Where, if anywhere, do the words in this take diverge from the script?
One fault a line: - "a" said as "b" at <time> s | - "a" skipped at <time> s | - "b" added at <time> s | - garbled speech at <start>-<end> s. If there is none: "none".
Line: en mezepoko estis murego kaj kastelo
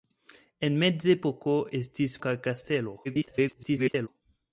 - "murego" skipped at 2.2 s
- garbled speech at 3.0-4.1 s